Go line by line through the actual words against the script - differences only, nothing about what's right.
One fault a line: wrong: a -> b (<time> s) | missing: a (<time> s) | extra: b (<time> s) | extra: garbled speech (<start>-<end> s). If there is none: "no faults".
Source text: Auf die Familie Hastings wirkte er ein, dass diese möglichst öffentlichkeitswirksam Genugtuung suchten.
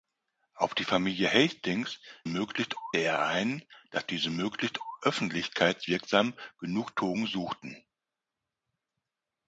wrong: wirkte -> möglichst (2.3 s)